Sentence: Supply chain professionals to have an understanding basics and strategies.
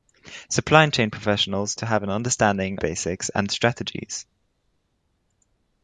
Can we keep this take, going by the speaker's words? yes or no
yes